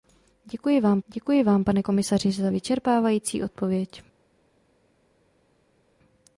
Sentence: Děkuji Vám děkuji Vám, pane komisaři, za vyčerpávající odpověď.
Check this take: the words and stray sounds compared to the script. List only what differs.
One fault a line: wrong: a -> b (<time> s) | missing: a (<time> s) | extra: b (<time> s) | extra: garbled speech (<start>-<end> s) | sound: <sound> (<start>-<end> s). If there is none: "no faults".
no faults